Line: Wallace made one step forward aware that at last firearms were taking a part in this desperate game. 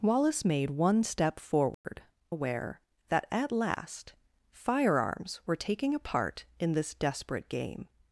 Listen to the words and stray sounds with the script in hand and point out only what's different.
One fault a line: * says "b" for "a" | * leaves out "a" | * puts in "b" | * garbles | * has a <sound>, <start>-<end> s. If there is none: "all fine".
* has a dropout, 1.7-1.8 s